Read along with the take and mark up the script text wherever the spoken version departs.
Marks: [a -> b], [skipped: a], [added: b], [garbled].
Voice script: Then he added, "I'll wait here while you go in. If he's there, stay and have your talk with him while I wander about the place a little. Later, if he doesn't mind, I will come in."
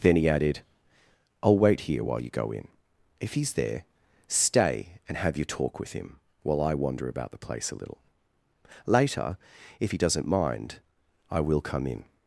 Then he added, "I'll wait here while you go in. If he's there, stay and have your talk with him while I wander about the place a little. Later, if he doesn't mind, I will come in."